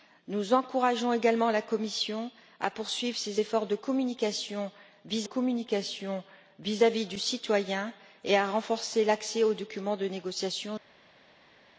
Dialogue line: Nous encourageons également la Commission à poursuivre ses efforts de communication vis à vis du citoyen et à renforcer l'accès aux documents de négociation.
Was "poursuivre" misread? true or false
false